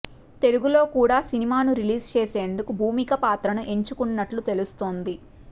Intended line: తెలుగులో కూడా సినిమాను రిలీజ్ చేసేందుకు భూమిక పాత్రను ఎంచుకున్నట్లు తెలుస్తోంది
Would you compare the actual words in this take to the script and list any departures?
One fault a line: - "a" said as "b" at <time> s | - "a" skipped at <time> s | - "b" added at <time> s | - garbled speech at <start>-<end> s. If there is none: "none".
none